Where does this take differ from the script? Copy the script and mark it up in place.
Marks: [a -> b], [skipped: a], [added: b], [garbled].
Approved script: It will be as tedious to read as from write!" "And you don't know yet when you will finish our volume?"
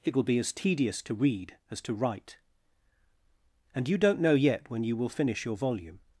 It will be as tedious to read as [from -> to] write!" "And you don't know yet when you will finish [our -> your] volume?"